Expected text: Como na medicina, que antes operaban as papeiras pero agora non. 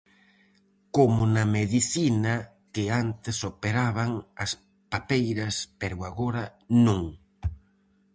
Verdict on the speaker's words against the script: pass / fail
pass